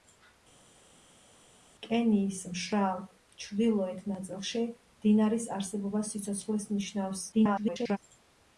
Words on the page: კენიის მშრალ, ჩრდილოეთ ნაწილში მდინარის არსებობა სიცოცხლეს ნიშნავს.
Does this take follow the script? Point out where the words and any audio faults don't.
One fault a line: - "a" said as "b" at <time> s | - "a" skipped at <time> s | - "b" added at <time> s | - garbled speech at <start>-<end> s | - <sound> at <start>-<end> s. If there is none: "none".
- garbled speech at 7.3-8.0 s